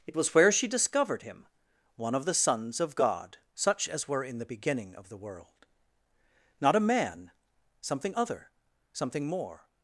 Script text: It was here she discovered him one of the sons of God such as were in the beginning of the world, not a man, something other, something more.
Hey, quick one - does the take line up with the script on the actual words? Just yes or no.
no